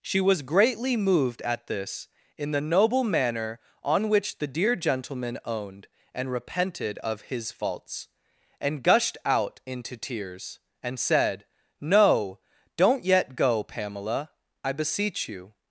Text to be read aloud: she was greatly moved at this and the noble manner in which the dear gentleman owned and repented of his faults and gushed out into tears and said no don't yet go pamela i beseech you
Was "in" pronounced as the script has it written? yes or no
no